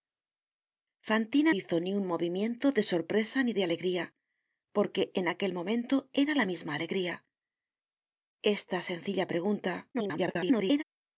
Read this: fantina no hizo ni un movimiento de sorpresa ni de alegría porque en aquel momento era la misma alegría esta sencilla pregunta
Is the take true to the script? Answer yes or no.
no